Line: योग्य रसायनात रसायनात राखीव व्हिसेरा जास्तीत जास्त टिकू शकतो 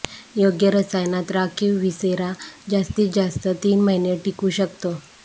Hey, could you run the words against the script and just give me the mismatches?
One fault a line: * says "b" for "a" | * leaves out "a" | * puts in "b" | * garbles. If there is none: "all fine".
* leaves out "रसायनात"
* puts in "तीन महिने"